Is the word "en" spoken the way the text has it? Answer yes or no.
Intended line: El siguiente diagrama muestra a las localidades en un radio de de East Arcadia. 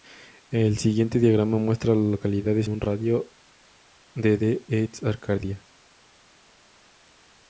no